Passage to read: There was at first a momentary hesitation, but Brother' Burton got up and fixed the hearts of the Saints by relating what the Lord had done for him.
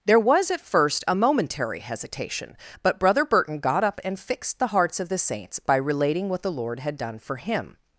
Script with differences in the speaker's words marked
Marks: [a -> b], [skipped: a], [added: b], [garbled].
There was at first a momentary hesitation, but Brother' Burton got up and fixed the hearts of the Saints by relating what the Lord had done for him.